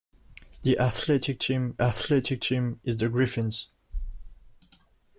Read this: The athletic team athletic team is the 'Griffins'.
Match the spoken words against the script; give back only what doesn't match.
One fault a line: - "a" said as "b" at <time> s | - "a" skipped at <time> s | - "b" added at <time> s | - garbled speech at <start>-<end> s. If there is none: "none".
none